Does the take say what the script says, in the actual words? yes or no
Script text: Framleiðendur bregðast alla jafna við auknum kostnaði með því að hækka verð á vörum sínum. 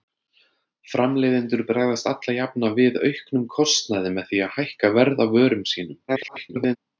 no